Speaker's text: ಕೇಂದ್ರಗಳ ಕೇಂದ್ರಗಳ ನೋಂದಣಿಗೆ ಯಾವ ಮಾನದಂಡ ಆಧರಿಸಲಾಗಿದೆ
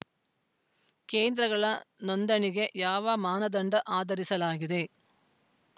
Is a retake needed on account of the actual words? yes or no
yes